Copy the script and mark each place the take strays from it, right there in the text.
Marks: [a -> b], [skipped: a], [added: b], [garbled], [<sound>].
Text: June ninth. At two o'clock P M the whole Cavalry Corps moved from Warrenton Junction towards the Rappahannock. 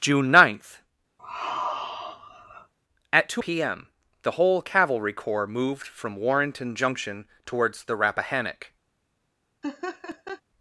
June ninth. [sigh] At two [skipped: o'clock] P M the whole Cavalry Corps moved from Warrenton Junction towards the Rappahannock. [laugh]